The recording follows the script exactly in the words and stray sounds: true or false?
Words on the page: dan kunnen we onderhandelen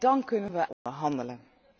false